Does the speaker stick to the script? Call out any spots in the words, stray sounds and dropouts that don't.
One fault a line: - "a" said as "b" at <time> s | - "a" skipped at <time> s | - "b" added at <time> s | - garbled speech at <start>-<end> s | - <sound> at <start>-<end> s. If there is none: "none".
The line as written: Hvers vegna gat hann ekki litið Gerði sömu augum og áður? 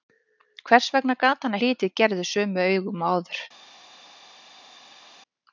- "ekki" skipped at 1.6 s